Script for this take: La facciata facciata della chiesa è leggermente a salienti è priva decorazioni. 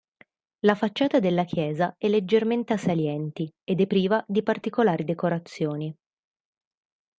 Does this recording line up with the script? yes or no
no